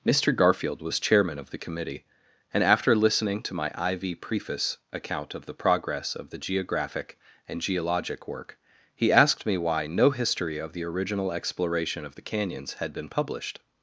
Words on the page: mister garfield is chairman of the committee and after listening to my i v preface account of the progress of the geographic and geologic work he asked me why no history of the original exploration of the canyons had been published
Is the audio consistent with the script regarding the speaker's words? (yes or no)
no